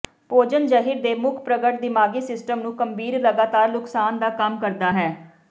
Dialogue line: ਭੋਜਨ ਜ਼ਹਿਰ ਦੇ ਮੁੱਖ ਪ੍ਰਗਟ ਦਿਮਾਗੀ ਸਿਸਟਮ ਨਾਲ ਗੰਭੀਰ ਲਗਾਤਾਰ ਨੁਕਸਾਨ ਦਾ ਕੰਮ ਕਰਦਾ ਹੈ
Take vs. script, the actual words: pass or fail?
fail